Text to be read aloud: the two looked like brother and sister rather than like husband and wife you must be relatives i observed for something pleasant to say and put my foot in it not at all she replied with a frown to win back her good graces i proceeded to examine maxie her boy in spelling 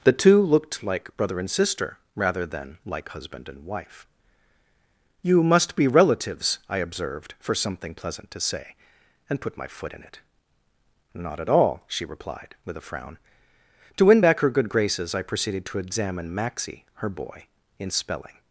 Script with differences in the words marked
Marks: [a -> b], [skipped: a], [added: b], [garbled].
the two looked like brother and sister rather than like husband and wife you must be relatives i observed for something pleasant to say and put my foot in it not at all she replied with a frown to win back her good graces i proceeded to examine maxie her boy in spelling